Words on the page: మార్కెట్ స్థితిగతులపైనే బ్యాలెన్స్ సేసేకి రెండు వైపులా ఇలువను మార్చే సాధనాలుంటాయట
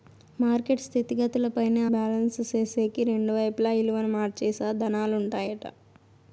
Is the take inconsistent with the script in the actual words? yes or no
no